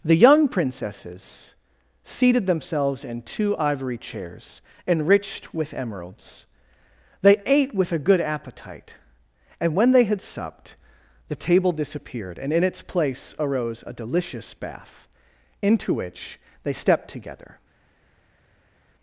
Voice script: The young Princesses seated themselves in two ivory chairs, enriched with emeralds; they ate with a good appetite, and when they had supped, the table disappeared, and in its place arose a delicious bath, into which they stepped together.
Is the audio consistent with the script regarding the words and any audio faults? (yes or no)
yes